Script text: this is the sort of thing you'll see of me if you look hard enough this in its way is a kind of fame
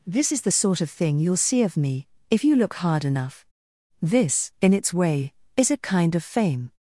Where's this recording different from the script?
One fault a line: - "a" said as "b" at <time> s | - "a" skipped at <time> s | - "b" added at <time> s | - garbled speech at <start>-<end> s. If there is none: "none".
none